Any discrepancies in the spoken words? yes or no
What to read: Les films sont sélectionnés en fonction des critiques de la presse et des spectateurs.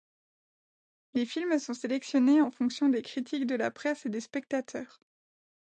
no